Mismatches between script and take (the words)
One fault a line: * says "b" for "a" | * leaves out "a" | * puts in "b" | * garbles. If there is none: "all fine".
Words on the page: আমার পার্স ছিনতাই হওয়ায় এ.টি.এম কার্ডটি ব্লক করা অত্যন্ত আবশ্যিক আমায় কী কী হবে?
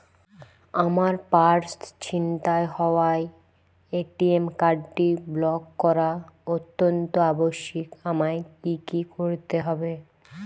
* puts in "করতে"